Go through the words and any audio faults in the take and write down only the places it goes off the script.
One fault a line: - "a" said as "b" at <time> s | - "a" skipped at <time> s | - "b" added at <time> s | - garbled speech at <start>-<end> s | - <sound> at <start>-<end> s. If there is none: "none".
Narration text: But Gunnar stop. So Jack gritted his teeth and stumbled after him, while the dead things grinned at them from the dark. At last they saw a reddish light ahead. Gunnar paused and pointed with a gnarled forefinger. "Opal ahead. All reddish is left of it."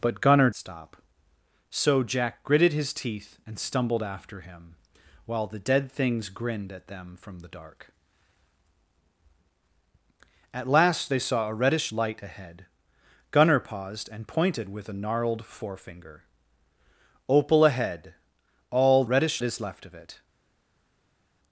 none